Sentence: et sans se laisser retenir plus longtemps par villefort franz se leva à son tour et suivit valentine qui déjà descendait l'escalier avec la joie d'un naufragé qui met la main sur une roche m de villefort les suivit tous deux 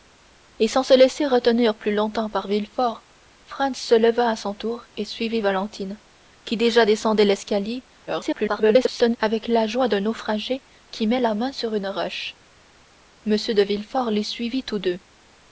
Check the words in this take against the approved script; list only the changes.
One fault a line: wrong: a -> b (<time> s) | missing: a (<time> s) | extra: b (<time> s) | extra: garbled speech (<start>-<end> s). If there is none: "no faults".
extra: garbled speech (8.1-9.2 s)